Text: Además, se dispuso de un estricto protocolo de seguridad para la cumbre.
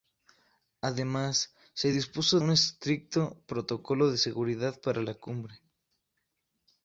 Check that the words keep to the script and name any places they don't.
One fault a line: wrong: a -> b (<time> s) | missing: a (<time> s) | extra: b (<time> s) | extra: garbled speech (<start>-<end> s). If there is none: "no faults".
missing: de (2.4 s)